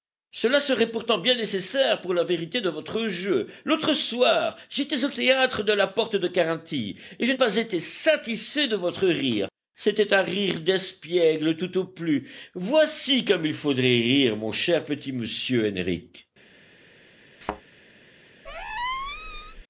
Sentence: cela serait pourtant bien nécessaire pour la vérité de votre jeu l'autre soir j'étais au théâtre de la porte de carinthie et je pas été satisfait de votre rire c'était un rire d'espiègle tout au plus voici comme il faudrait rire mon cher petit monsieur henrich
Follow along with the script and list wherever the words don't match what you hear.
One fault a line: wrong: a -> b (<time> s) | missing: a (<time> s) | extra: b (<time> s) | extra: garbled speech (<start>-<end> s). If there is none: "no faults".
no faults